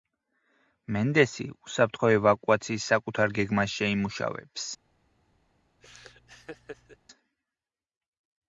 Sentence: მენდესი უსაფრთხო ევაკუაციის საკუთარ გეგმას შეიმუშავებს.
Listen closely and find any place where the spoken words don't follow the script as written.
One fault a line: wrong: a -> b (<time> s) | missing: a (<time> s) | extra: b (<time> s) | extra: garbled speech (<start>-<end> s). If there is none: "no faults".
no faults